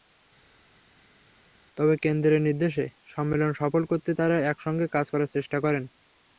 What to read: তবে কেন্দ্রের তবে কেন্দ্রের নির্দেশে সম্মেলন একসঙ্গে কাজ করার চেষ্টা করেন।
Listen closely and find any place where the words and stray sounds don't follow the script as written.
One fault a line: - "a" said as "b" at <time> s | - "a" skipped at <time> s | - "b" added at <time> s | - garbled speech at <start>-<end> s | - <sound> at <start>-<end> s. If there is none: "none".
- "তবে কেন্দ্রের নির্দেশে সম্মেলন" said as "নির্দেশে সম্মেলন সফল করতে তাঁরা" at 2.5 s